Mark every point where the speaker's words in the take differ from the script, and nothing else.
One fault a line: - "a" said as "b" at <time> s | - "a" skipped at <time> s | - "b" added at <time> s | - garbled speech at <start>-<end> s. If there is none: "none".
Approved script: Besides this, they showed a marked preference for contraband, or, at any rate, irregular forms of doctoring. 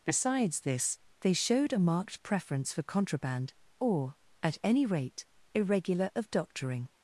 - "forms" skipped at 6.1 s